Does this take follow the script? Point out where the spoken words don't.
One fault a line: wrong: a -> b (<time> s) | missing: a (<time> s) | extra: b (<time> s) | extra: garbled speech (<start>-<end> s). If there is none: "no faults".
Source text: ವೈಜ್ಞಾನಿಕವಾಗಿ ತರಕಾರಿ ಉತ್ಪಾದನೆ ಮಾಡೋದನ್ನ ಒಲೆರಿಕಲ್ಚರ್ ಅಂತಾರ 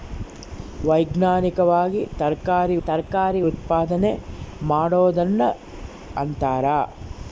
extra: ತರಕಾರಿ (2.9 s)
missing: ಒಲೆರಿಕಲ್ಚರ್ (5.5 s)